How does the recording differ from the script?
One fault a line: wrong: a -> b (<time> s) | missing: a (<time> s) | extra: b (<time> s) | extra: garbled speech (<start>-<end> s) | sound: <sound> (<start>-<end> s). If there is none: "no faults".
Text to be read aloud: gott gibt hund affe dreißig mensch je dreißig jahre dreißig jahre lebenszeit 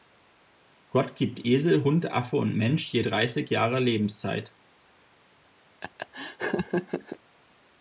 extra: esel (1.4 s)
wrong: dreißig -> und (2.4 s)
missing: dreißig jahre (3.8 s)
sound: laugh (5.8-7.2 s)